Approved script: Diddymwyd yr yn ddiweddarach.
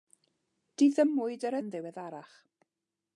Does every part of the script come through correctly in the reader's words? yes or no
yes